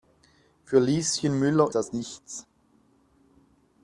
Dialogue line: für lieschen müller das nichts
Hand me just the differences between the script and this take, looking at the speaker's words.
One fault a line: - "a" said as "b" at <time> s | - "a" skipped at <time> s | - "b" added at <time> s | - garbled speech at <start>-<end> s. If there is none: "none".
none